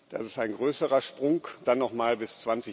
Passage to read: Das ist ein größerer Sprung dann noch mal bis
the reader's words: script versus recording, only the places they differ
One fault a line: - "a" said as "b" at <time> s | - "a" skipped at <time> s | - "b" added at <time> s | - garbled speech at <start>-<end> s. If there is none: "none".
none